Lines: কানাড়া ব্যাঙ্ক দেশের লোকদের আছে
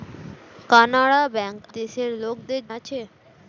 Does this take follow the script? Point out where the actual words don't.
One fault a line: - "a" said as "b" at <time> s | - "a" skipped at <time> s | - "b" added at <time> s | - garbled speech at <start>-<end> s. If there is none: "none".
none